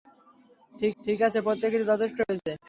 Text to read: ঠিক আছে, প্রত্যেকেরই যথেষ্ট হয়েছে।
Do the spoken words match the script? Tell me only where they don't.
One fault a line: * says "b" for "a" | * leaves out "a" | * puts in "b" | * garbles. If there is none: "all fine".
* puts in "ঠিক"